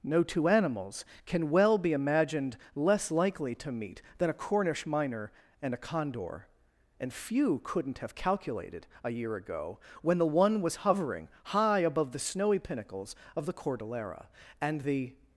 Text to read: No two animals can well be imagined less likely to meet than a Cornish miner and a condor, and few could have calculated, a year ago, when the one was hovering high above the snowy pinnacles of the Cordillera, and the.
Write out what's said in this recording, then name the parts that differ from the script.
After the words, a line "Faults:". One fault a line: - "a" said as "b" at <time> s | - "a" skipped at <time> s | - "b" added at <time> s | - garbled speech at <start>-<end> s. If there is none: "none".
No two animals can well be imagined less likely to meet than a Cornish miner and a condor, and few couldn't have calculated, a year ago, when the one was hovering high above the snowy pinnacles of the Cordillera, and the.
Faults:
- "could" said as "couldn't" at 7.6 s